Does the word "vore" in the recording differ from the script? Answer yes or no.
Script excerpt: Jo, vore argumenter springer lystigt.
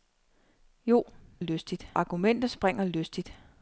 yes